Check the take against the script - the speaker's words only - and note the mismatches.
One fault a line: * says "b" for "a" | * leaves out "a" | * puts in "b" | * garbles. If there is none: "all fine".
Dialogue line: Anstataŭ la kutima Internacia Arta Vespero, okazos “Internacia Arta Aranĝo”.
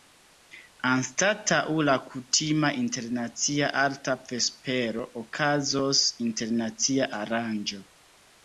* leaves out "Arta"